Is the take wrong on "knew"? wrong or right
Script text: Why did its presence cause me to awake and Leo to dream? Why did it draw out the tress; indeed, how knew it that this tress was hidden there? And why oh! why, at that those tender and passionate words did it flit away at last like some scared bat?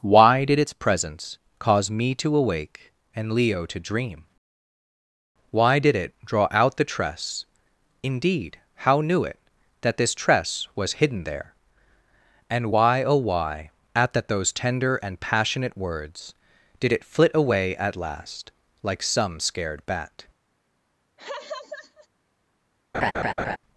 right